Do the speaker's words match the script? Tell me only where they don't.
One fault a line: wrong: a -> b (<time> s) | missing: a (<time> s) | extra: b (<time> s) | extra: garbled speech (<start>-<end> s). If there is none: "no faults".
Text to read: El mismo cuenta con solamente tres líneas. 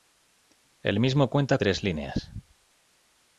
missing: con solamente (1.6 s)